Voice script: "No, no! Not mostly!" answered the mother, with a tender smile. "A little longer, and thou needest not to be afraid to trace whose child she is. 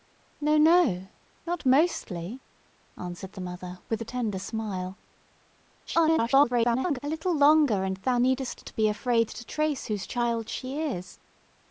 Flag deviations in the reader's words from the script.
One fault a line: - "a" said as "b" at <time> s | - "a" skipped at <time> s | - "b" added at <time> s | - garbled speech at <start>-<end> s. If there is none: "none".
- garbled speech at 5.9-7.0 s
- "not" skipped at 8.6 s